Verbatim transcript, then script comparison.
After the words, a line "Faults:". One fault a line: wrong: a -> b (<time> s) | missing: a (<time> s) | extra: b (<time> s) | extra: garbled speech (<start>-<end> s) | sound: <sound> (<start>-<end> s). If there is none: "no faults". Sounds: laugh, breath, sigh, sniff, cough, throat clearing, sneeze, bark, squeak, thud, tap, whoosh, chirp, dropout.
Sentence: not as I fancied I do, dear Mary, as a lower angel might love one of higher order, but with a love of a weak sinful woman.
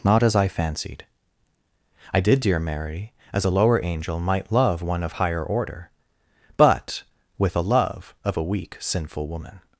not as I fancied I did, dear Mary, as a lower angel might love one of higher order, but with a love of a weak sinful woman.
Faults:
wrong: do -> did (2.2 s)